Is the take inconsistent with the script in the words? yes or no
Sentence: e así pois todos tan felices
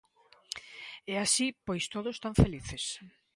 no